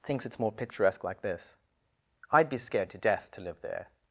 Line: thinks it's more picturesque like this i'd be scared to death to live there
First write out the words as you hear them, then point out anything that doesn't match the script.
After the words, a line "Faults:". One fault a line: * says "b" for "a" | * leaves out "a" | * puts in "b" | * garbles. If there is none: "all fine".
thinks it's more picturesque like this i'd be scared to death to live there
Faults:
all fine